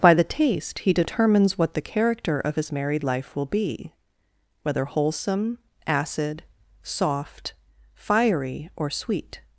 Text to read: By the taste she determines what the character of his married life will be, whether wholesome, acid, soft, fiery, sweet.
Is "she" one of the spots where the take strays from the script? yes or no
yes